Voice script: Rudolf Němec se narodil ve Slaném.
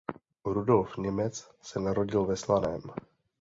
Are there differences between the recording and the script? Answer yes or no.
no